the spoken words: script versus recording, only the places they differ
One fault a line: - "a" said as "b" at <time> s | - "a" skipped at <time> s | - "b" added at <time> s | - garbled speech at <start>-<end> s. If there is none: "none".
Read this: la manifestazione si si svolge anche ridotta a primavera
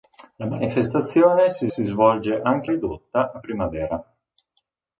none